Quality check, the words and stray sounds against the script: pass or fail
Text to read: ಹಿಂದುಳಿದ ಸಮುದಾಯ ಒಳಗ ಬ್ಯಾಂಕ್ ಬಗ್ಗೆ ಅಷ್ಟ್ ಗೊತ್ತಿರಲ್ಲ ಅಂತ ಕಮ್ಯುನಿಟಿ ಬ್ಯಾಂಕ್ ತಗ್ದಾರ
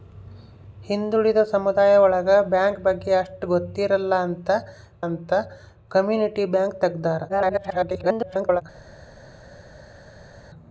fail